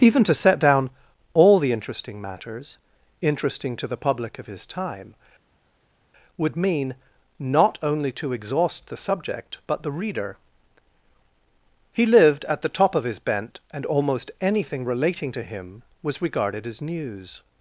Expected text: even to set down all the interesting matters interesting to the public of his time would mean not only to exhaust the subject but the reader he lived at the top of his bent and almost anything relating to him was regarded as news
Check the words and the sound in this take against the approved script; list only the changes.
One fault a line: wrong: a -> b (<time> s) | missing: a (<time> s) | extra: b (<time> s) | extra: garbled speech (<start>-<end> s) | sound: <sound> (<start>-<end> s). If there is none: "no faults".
no faults